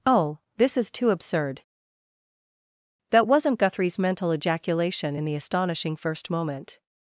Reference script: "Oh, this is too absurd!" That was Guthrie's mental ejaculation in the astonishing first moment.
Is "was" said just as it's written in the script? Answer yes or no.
no